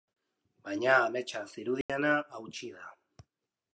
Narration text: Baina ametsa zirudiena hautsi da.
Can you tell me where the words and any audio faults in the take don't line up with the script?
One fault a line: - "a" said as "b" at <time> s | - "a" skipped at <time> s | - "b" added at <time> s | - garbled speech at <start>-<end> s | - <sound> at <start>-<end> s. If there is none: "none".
- dropout at 1.8-1.9 s